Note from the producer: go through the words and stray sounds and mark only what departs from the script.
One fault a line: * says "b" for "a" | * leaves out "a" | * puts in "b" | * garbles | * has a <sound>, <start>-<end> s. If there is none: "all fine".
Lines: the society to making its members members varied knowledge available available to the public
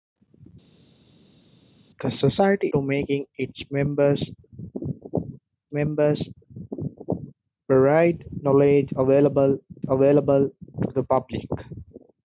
all fine